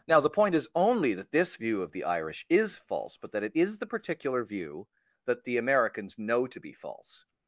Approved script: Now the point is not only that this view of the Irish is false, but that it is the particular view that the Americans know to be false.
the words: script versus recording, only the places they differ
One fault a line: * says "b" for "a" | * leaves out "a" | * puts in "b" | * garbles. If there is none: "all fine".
* leaves out "not"